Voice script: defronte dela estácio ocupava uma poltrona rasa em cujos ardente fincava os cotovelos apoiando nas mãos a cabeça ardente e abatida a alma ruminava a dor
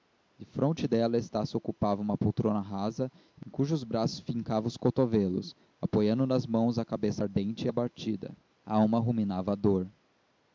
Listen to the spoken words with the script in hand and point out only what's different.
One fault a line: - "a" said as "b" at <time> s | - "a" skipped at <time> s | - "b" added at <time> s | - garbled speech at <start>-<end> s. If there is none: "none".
- "ardente" said as "braços" at 3.8 s